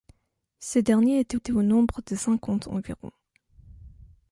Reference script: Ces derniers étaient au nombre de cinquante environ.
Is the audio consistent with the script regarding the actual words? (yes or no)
no